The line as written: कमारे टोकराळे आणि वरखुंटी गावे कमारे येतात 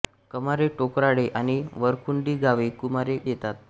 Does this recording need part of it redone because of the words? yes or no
no